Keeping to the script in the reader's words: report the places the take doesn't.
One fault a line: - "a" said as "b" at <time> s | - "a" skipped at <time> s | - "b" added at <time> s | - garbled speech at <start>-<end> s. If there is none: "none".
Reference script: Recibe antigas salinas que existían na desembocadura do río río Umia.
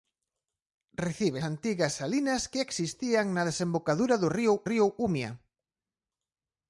none